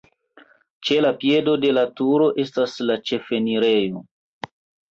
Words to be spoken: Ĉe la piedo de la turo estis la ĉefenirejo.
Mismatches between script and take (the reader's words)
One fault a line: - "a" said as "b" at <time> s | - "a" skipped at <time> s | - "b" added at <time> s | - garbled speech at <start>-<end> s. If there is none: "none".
- "estis" said as "estas" at 2.4 s